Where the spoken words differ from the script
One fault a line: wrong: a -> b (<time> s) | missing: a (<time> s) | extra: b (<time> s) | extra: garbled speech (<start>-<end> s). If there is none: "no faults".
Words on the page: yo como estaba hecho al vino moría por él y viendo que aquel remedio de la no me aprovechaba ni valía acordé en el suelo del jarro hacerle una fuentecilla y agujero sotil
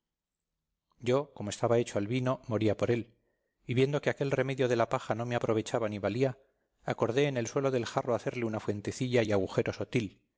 extra: paja (4.9 s)